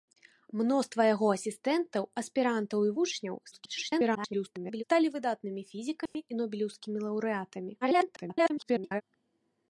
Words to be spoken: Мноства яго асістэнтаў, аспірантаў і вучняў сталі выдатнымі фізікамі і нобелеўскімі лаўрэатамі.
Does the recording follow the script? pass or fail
fail